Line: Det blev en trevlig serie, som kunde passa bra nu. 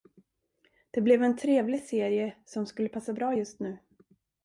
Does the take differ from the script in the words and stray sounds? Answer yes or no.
yes